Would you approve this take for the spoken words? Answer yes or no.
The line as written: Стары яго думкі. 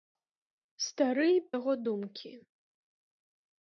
yes